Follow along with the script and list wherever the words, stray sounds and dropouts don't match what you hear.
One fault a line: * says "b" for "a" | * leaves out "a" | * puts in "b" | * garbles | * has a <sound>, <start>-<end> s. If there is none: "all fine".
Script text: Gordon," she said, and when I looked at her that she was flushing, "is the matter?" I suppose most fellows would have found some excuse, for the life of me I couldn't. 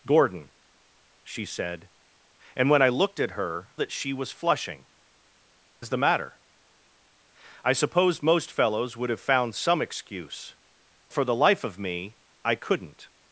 all fine